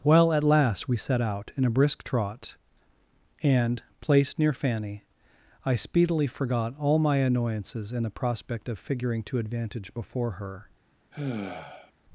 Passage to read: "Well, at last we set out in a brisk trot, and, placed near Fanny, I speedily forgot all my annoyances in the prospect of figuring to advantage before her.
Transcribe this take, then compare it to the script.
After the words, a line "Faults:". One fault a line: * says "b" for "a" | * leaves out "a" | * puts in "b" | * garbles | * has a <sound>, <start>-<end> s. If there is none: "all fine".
"Well, at last we set out in a brisk trot, and, placed near Fanny, I speedily forgot all my annoyances in the prospect of figuring to advantage before her.
Faults:
* has a sigh, 11.1-11.9 s